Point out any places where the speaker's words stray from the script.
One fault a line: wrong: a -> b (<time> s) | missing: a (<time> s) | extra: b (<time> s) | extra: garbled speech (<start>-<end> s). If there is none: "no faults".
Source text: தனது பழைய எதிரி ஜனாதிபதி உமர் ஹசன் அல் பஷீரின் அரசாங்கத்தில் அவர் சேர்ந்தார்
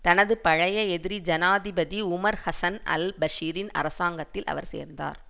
no faults